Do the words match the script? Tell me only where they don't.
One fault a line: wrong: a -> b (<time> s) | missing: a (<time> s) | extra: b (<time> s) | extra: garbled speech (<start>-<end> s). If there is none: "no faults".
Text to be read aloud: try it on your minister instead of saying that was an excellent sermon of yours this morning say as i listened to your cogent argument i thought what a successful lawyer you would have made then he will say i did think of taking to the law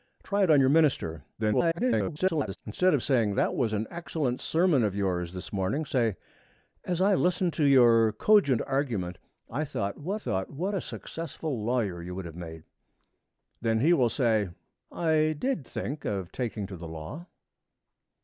extra: garbled speech (1.4-2.6 s)
extra: thought what (10.1 s)